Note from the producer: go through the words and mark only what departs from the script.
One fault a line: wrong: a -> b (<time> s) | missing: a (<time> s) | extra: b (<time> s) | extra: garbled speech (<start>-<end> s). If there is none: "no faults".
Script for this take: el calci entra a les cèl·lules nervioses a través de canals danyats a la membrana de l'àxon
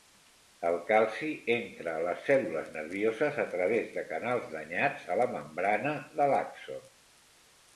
no faults